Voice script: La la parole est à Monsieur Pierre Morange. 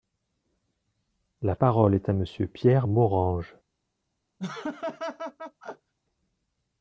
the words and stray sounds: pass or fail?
fail